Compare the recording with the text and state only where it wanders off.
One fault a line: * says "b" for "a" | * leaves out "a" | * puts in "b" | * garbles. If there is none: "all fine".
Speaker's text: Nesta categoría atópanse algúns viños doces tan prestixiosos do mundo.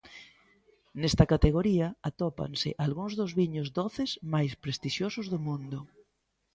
* puts in "dos"
* says "máis" for "tan"